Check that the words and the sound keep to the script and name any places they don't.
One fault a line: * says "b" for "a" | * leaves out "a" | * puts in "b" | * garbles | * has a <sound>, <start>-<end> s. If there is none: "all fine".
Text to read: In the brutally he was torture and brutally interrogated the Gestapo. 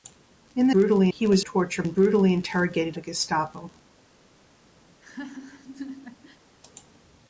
* has a laugh, 4.9-6.4 s